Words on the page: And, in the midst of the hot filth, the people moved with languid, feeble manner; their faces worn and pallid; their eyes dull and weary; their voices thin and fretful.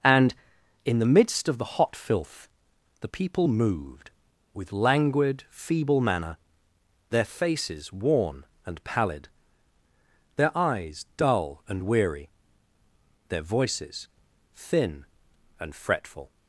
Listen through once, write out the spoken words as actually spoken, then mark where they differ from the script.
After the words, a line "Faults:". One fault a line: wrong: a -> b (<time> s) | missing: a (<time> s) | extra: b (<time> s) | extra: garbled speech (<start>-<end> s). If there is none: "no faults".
And, in the midst of the hot filth, the people moved with languid, feeble manner; their faces worn and pallid; their eyes dull and weary; their voices thin and fretful.
Faults:
no faults